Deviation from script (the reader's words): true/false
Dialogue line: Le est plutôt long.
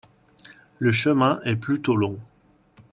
true